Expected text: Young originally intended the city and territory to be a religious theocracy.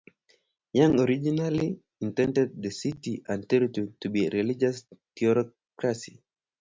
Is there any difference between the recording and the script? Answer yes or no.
no